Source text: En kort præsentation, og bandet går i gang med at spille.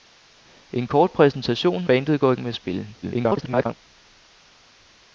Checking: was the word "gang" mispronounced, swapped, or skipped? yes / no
yes